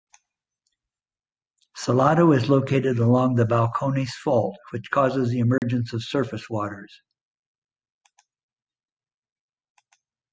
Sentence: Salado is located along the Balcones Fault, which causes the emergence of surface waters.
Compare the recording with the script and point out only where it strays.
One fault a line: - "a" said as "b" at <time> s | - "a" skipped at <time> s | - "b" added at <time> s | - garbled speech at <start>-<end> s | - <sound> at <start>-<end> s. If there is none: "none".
- dropout at 5.6-5.6 s